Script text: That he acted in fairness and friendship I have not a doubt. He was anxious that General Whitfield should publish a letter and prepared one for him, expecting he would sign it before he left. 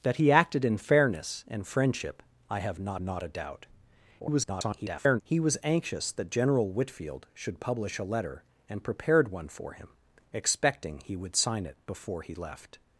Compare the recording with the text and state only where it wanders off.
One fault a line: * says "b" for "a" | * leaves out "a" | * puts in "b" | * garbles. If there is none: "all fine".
* puts in "not"
* garbles